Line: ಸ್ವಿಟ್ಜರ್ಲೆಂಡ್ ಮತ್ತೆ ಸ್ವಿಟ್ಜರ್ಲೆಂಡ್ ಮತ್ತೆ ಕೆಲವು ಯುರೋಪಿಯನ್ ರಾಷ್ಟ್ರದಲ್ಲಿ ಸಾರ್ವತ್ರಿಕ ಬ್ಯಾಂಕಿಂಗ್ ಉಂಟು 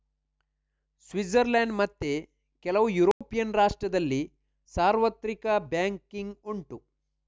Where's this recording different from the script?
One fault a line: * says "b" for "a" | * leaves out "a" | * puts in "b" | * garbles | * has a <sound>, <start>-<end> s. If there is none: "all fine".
* leaves out "ಸ್ವಿಟ್ಜರ್ಲೆಂಡ್ ಮತ್ತೆ"
* has a dropout, 3.1-3.2 s